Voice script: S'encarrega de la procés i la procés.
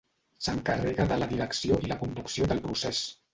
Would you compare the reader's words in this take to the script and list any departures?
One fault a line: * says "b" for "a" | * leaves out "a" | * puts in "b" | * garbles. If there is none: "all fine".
* says "direcció" for "procés"
* puts in "conducció del"